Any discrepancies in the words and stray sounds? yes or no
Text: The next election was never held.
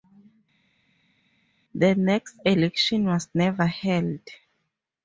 no